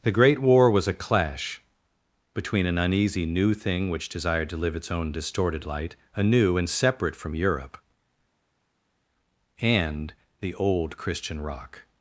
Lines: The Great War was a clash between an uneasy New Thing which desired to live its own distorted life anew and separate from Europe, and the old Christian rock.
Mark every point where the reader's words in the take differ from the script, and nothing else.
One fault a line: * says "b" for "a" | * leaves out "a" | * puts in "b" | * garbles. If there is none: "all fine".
* says "light" for "life"